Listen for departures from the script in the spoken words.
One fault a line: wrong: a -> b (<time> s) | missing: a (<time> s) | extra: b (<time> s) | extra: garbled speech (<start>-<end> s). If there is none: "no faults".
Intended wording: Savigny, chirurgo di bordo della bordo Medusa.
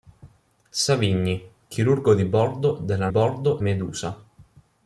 no faults